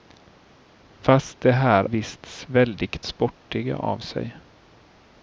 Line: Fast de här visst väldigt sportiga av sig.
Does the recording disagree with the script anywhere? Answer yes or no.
no